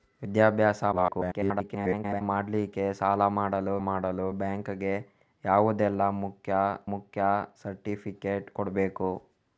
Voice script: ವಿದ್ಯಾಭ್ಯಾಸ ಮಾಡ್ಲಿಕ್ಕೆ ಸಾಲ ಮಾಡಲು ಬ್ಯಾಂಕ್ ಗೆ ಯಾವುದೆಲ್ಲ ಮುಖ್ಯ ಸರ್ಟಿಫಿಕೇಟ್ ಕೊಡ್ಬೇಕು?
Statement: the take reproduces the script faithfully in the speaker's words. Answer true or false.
false